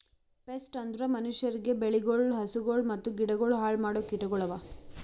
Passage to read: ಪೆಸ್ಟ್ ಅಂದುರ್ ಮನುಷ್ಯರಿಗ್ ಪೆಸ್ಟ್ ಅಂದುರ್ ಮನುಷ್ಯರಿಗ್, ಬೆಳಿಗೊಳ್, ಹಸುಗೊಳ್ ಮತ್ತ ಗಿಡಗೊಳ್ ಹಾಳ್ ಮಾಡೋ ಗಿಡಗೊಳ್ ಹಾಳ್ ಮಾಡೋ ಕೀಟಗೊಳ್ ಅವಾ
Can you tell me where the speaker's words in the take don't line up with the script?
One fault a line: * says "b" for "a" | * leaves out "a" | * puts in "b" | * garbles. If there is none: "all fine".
* leaves out "ಪೆಸ್ಟ್ ಅಂದುರ್ ಮನುಷ್ಯರಿಗ್"
* leaves out "ಗಿಡಗೊಳ್ ಹಾಳ್ ಮಾಡೋ"